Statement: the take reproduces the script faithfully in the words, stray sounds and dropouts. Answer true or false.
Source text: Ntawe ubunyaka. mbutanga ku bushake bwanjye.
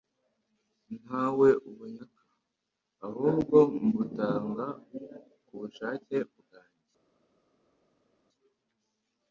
false